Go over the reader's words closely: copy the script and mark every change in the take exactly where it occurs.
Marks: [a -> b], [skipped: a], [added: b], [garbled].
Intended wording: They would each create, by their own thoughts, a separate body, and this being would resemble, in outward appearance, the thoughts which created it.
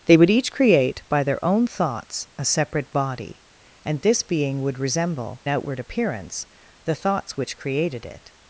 They would each create, by their own thoughts, a separate body, and this being would resemble, [skipped: in] outward appearance, the thoughts which created it.